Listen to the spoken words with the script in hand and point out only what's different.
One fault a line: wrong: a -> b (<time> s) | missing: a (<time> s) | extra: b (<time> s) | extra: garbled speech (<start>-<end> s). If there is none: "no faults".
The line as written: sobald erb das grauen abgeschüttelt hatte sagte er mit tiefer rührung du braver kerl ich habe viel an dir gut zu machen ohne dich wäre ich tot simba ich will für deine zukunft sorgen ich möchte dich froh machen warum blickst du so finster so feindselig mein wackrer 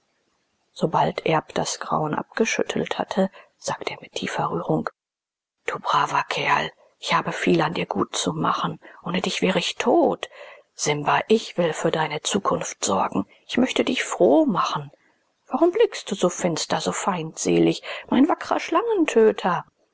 no faults